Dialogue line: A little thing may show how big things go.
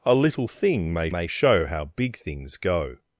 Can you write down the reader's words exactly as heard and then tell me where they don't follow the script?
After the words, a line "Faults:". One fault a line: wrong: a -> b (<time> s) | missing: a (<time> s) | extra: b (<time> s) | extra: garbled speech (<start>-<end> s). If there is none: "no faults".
A little thing may may show how big things go.
Faults:
extra: may (1.1 s)